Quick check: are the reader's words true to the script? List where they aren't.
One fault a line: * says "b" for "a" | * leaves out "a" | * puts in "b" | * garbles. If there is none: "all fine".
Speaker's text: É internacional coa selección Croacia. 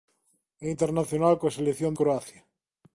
all fine